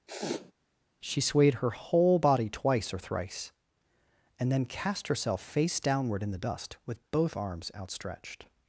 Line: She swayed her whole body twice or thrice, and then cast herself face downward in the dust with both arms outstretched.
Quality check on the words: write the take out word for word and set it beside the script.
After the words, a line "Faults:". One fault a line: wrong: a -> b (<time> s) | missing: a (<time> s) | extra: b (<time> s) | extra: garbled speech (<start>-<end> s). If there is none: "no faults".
She swayed her whole body twice or thrice, and then cast herself face downward in the dust with both arms outstretched.
Faults:
no faults